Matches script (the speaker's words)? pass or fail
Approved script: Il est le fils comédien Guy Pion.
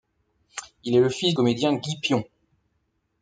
pass